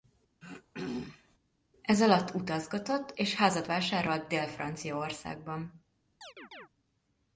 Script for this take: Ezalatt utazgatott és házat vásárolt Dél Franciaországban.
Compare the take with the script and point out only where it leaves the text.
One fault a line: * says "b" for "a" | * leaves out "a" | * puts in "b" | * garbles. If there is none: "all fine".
all fine